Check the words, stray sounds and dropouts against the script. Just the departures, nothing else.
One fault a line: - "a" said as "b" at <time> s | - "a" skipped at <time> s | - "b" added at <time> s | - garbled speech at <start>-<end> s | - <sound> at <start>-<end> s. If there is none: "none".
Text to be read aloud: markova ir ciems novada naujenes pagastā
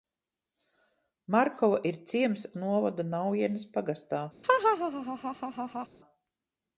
- laugh at 4.4-5.9 s